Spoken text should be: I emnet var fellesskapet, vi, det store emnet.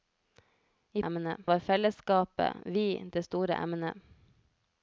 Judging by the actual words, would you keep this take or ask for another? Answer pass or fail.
pass